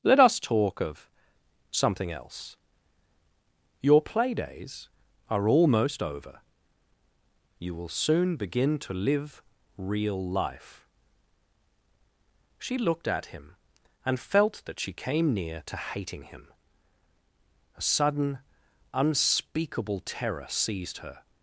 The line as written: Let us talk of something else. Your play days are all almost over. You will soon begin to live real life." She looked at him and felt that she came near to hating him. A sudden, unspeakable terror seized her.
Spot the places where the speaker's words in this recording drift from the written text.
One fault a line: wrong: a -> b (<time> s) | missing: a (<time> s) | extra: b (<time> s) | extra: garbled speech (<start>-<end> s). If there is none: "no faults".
missing: all (5.5 s)